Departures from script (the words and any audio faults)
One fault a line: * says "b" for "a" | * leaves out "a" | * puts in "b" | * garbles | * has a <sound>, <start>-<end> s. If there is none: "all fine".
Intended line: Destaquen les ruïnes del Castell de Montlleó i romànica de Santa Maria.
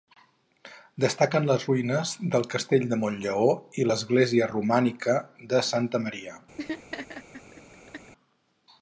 * puts in "l'església"
* has a laugh, 6.6-8.1 s